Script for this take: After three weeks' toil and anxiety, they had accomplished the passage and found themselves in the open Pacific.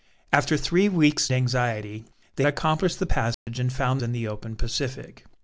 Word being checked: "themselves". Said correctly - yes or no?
no